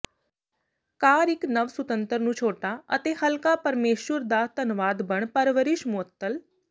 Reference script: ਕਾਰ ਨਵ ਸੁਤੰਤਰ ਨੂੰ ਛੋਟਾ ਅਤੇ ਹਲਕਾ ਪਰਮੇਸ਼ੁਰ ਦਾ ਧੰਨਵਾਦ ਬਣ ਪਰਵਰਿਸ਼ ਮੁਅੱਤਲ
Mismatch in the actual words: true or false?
true